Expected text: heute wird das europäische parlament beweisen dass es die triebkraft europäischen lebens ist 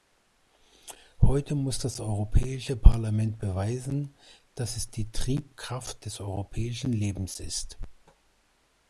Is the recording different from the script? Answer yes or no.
yes